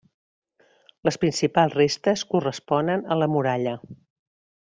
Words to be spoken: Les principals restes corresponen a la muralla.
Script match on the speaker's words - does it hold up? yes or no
yes